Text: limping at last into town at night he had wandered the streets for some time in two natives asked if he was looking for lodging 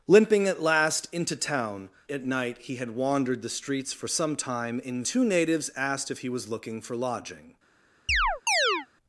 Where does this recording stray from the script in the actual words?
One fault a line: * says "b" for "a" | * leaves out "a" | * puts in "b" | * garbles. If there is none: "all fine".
all fine